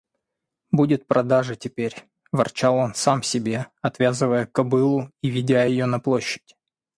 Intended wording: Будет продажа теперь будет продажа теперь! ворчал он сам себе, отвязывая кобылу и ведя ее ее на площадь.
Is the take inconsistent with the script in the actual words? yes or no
yes